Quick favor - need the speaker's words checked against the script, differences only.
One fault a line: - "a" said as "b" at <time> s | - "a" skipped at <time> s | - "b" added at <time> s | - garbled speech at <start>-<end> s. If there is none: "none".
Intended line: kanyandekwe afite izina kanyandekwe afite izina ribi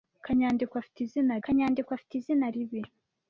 none